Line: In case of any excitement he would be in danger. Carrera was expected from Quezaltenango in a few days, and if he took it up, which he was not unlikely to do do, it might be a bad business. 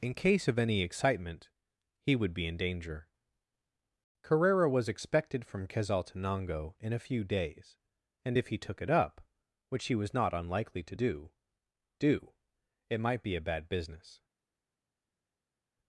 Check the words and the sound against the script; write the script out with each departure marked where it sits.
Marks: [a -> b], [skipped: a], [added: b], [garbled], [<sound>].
In case of any excitement he would be in danger. Carrera was expected from Quezaltenango in a few days, and if he took it up, which he was not unlikely to do do, it might be a bad business.